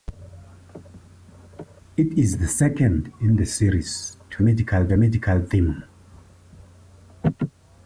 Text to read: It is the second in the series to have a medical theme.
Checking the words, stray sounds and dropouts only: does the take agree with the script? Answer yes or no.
no